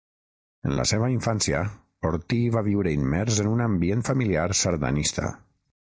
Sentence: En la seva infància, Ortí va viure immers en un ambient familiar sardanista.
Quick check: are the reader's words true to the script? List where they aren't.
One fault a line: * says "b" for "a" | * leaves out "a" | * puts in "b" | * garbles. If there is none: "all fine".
all fine